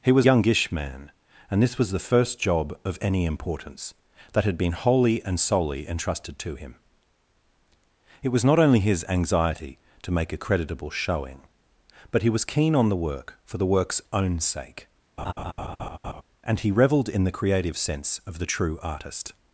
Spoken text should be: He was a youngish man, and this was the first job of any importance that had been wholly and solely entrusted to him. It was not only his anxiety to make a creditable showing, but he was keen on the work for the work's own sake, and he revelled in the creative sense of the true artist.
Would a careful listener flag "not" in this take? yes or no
no